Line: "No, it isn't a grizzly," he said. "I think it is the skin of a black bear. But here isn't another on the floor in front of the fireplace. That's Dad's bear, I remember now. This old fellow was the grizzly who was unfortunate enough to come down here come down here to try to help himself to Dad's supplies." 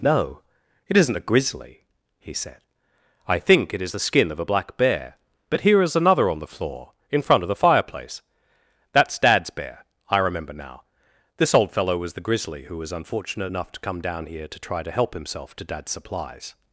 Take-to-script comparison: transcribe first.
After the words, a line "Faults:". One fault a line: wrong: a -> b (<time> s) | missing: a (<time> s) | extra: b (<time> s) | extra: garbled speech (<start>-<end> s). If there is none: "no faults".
"No, it isn't a grizzly," he said. "I think it is the skin of a black bear. But here is another on the floor in front of the fireplace. That's Dad's bear, I remember now. This old fellow was the grizzly who was unfortunate enough to come down here to try to help himself to Dad's supplies."
Faults:
wrong: isn't -> is (5.8 s)
missing: come down here (14.5 s)